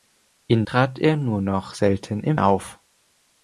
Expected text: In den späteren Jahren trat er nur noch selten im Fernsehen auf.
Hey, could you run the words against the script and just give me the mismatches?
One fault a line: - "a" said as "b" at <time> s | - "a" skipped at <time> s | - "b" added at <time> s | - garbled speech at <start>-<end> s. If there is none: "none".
- "den späteren Jahren" skipped at 0.7 s
- "Fernsehen" skipped at 2.4 s